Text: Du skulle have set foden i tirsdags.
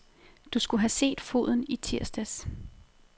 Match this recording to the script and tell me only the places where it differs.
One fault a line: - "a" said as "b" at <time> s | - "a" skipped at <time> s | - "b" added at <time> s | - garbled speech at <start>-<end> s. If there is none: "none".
none